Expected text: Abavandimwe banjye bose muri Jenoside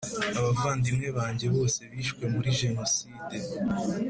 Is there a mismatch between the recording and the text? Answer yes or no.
yes